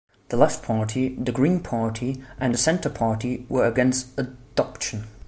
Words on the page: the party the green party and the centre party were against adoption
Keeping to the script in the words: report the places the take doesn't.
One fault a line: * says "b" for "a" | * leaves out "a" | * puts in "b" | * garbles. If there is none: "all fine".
* puts in "left"